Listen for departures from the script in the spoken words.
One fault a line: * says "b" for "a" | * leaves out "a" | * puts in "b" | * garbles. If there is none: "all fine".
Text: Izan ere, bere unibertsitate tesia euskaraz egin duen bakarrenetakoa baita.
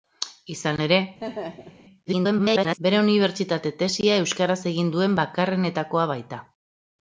* garbles